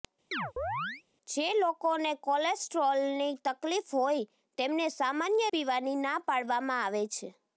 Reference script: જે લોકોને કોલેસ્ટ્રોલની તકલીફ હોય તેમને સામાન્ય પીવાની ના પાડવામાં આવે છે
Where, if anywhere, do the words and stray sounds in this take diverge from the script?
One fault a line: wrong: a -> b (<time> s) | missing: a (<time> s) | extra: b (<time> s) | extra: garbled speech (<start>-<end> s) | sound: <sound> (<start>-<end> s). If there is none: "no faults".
sound: chirp (0.3-1.0 s)